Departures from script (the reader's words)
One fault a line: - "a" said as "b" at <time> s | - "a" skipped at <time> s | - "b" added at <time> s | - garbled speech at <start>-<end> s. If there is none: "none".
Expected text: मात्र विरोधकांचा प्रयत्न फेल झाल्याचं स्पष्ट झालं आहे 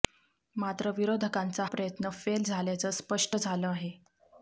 none